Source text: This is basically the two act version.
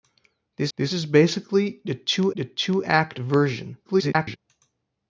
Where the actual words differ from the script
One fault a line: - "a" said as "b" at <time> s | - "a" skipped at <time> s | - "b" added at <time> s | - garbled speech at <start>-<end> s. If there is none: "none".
- "this" added at 0.7 s
- "the two" added at 2.3 s
- garbled speech at 3.8-4.4 s